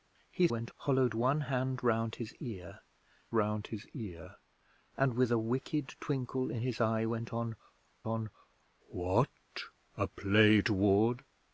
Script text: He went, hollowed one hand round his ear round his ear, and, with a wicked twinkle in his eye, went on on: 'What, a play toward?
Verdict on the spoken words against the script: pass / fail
pass